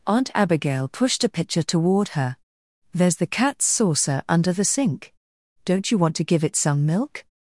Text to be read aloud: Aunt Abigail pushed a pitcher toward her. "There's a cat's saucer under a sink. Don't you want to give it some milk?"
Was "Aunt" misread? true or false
false